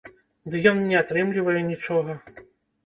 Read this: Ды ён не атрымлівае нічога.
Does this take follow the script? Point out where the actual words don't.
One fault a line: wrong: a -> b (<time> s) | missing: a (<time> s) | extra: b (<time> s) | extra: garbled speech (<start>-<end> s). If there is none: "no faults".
no faults